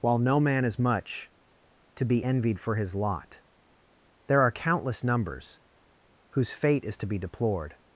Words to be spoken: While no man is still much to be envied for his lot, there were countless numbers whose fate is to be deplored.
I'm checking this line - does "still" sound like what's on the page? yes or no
no